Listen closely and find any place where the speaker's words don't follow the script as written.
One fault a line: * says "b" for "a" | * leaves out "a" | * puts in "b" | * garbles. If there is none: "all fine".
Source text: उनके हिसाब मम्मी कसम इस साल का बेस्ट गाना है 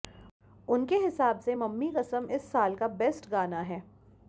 * puts in "से"